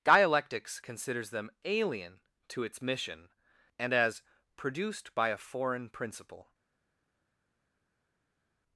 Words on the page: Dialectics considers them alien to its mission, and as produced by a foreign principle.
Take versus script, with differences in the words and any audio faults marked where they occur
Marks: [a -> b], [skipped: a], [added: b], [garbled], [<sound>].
Dialectics considers them alien to its mission, and as produced by a foreign principle.